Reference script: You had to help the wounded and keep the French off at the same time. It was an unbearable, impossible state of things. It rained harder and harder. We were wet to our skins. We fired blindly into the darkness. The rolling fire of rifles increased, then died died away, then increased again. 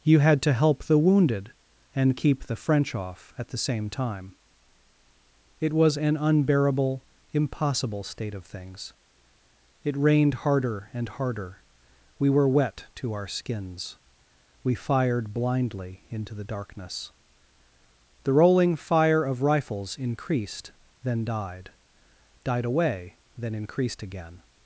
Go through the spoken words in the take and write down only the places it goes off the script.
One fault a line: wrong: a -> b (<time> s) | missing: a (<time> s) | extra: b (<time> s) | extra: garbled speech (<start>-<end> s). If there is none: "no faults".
no faults